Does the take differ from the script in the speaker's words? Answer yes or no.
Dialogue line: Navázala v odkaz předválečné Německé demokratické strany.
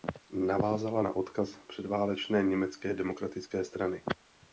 yes